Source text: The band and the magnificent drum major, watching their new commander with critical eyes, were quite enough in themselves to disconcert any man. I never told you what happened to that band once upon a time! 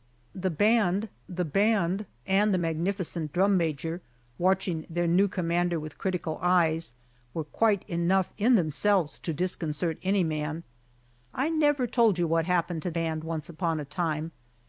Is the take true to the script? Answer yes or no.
no